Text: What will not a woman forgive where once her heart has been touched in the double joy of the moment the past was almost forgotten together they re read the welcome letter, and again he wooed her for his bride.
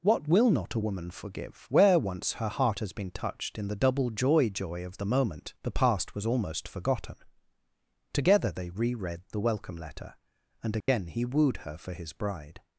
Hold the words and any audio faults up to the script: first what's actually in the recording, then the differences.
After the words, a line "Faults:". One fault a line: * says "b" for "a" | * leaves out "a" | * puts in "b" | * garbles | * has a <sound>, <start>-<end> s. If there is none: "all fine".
What will not a woman forgive where once her heart has been touched in the double joy joy of the moment the past was almost forgotten together they re read the welcome letter, and again he wooed her for his bride.
Faults:
* puts in "joy"
* has a dropout, 10.8-10.9 s